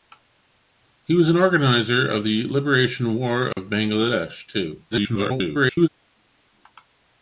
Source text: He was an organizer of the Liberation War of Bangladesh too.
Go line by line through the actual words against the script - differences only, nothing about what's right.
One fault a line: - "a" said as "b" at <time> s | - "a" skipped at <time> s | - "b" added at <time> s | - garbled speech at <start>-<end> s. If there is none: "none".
- garbled speech at 4.9-5.9 s